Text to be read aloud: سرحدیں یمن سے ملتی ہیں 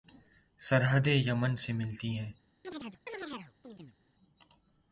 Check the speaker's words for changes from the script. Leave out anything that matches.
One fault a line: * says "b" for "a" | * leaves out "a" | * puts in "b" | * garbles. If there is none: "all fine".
all fine